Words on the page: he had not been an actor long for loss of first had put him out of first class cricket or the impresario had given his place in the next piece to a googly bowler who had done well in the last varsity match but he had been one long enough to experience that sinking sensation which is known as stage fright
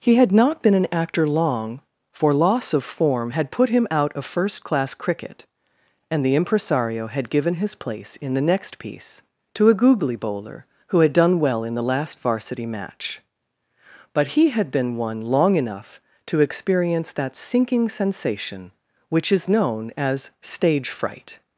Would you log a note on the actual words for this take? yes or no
yes